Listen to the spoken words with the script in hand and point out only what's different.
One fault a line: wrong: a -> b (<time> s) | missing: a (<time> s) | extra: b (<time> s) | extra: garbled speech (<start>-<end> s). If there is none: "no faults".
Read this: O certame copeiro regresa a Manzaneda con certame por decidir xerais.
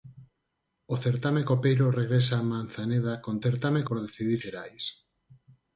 no faults